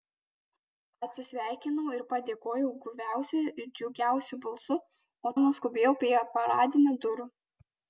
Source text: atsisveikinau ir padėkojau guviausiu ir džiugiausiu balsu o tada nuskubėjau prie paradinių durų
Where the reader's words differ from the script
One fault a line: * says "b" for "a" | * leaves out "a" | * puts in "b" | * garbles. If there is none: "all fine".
* leaves out "tada"